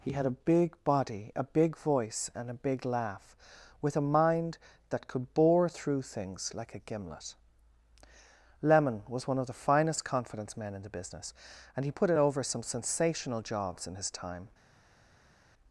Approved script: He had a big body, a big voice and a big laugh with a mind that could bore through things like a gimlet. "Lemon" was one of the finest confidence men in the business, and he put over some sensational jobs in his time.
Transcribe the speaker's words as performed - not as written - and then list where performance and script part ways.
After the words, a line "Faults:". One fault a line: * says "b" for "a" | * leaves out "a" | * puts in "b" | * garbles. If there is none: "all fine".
He had a big body, a big voice and a big laugh with a mind that could bore through things like a gimlet. "Lemon" was one of the finest confidence men in the business, and he put it over some sensational jobs in his time.
Faults:
* puts in "it"